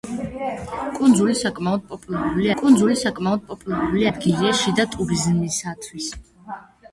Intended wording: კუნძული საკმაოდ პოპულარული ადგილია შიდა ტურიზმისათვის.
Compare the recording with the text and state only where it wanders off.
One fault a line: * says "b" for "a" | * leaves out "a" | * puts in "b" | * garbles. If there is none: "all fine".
* puts in "კუნძული საკმაოდ პოპულარული"